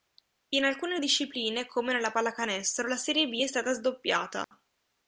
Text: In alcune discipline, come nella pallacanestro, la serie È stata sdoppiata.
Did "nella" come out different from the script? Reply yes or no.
no